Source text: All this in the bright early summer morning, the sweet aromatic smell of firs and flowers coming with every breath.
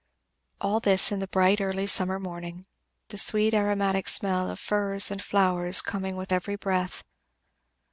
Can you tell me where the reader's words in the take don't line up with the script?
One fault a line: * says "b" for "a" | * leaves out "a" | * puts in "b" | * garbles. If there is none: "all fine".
all fine